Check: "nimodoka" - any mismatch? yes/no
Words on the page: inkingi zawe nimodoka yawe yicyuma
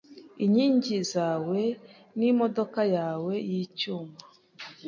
no